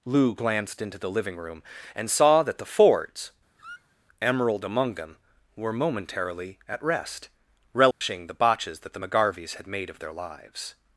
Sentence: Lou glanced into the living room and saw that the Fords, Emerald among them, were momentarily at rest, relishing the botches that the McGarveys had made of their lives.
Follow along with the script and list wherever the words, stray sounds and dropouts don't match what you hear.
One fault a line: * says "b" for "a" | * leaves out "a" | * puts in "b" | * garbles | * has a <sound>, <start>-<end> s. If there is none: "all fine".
* has a squeak, 3.6-4.0 s
* has a dropout, 7.9-8.0 s